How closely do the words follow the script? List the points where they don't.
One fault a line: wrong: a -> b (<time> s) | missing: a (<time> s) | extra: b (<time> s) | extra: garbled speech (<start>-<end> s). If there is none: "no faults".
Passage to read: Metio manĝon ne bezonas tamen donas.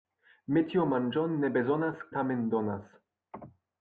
no faults